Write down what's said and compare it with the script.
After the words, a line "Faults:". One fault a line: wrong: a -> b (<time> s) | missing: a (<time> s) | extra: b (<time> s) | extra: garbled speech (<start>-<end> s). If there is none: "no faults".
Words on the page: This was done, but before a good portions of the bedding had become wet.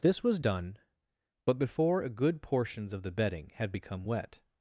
This was done, but before a good portions of the bedding had become wet.
Faults:
no faults